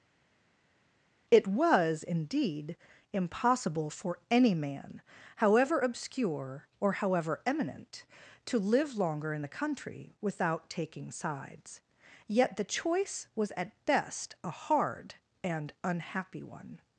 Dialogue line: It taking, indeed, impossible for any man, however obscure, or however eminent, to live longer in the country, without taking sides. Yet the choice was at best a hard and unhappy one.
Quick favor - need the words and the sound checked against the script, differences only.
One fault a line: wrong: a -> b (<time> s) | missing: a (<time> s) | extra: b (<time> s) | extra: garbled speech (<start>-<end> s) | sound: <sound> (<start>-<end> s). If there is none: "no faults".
wrong: taking -> was (1.5 s)